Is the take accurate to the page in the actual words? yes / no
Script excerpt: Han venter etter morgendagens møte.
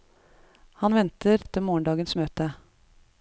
yes